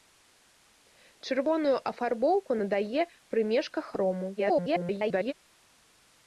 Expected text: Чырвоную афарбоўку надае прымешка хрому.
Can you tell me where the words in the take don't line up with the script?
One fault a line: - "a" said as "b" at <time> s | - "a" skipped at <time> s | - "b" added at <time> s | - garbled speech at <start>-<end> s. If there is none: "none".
- garbled speech at 4.4-5.3 s